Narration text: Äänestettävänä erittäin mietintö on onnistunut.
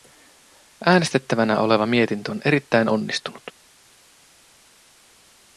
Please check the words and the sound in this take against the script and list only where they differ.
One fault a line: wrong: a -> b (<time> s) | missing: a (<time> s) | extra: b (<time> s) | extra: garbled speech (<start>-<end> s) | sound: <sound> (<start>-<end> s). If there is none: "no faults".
wrong: erittäin -> oleva (1.6 s)
extra: erittäin (2.4 s)